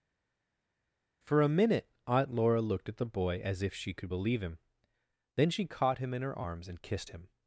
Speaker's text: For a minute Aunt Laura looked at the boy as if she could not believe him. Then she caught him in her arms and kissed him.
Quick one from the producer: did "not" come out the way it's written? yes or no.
no